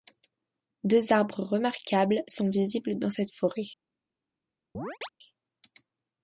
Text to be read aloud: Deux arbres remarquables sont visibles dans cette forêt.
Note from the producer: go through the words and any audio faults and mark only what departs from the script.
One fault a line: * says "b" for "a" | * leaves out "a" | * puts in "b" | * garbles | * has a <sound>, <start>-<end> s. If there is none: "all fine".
* has a chirp, 4.7-5.1 s